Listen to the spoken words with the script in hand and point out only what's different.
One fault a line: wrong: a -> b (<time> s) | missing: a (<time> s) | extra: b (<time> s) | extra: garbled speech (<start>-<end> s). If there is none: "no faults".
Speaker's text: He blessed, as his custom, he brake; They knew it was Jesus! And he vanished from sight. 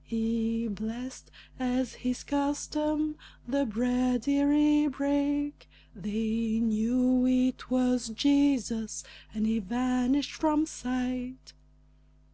extra: the bread ere (3.5 s)